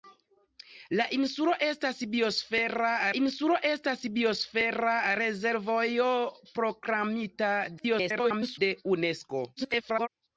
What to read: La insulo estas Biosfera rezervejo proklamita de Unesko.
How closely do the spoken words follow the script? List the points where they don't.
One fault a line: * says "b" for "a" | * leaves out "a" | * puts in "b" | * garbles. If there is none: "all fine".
* puts in "insulo estas Biosfera"
* garbles
* garbles